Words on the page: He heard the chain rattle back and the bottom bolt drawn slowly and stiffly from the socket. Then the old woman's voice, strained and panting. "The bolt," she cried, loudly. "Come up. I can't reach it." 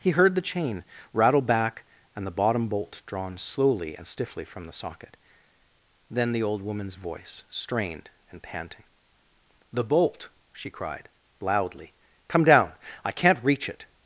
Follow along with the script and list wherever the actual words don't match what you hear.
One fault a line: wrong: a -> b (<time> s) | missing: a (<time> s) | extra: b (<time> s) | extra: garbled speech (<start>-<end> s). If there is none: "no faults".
wrong: up -> down (12.4 s)